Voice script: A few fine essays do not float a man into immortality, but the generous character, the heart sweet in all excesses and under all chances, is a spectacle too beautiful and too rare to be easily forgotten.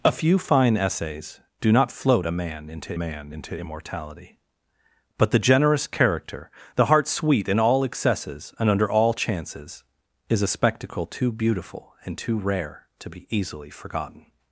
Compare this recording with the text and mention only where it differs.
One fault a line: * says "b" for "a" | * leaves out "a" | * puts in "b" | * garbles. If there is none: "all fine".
* puts in "man into"